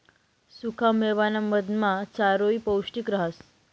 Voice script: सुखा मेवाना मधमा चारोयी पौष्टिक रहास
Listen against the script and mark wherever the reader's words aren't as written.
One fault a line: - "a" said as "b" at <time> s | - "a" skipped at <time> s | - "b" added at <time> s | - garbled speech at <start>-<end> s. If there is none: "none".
none